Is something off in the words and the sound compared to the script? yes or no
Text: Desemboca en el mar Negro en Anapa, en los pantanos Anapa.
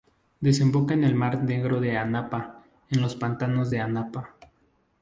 yes